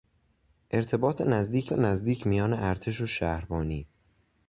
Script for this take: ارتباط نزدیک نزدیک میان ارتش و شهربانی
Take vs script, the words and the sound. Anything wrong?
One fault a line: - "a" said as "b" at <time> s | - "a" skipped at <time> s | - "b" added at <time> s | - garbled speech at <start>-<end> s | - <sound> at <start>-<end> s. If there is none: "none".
none